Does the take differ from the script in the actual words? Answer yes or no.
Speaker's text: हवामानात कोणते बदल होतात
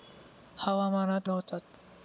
yes